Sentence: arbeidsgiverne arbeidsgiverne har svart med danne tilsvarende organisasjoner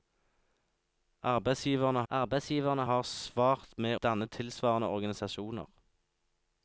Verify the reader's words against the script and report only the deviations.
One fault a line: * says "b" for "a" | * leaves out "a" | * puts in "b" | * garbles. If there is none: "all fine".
all fine